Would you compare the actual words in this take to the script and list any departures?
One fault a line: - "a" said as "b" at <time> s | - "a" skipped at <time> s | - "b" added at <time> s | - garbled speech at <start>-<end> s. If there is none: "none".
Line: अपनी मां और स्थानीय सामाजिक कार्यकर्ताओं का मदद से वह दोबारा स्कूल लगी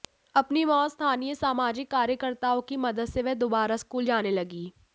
- "का" said as "की" at 2.6 s
- "जाने" added at 4.1 s